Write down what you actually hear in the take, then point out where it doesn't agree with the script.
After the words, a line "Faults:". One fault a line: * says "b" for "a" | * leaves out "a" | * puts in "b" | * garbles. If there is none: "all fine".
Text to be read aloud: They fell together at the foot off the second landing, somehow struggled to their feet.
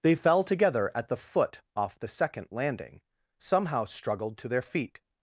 They fell together at the foot off the second landing, somehow struggled to their feet.
Faults:
all fine